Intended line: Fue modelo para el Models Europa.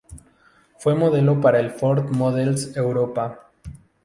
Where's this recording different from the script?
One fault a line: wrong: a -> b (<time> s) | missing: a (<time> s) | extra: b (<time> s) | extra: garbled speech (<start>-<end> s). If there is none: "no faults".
extra: Ford (1.7 s)